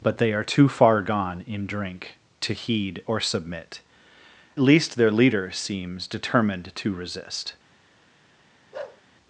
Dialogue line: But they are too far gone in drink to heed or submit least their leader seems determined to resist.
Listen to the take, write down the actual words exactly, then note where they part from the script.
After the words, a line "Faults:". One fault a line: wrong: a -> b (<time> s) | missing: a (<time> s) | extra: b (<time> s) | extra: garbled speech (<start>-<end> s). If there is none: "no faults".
But they are too far gone in drink to heed or submit least their leader seems determined to resist.
Faults:
no faults